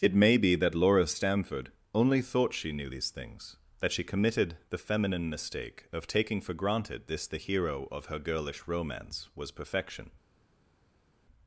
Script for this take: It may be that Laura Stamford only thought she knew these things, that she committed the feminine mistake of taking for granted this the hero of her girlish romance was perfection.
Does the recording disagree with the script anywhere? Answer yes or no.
no